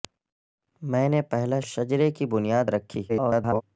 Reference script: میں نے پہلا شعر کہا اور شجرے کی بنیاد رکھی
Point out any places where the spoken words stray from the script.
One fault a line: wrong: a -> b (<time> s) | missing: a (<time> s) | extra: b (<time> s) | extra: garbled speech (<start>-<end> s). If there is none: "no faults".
missing: شعر کہا اور (1.6 s)
extra: garbled speech (3.1-3.6 s)